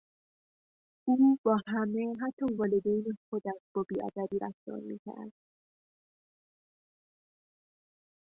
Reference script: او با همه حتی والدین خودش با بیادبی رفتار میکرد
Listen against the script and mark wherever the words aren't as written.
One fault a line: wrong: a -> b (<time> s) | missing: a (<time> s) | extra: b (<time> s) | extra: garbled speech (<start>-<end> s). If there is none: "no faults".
no faults